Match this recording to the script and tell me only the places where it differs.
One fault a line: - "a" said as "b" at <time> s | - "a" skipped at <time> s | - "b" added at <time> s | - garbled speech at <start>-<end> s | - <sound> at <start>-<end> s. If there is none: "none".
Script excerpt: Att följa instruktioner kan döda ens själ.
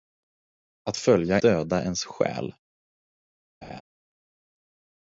- "instruktioner kan" skipped at 1.4 s
- laugh at 3.6-3.8 s